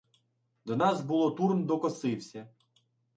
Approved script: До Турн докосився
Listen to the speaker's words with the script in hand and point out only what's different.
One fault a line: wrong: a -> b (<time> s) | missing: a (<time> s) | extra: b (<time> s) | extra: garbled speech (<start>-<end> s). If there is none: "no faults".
extra: нас було (0.8 s)